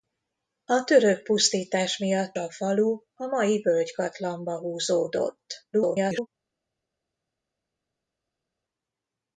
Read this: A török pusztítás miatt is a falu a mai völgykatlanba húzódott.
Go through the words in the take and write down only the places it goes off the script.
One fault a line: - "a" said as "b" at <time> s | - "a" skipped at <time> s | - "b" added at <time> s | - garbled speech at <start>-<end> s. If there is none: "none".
- "is" skipped at 2.4 s
- garbled speech at 5.7-6.3 s